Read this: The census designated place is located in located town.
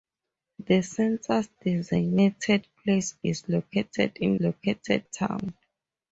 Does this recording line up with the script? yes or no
yes